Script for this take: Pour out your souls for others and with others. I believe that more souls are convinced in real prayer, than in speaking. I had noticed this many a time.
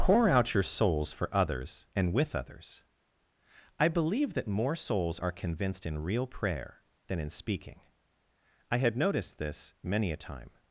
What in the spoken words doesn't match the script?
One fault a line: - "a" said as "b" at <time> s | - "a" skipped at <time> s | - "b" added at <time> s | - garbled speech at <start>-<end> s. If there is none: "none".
none